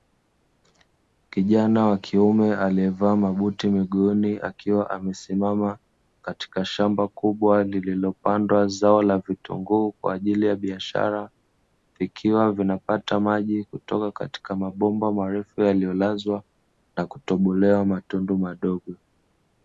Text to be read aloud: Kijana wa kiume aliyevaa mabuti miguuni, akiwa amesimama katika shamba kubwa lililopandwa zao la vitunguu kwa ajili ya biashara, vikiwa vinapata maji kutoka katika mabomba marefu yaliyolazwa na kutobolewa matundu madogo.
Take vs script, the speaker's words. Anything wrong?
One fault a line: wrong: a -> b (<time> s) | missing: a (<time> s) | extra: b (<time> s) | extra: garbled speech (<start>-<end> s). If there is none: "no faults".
no faults